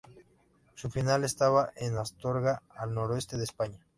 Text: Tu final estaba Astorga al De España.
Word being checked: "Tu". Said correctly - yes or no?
no